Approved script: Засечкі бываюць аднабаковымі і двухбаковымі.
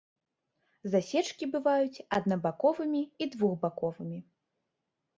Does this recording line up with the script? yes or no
yes